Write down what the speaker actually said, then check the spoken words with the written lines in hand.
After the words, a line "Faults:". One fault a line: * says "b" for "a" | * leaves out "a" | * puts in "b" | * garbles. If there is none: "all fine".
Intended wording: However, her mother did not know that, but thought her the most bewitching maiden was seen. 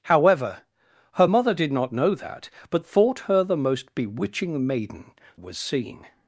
However, her mother did not know that, but thought her the most bewitching maiden was seen.
Faults:
all fine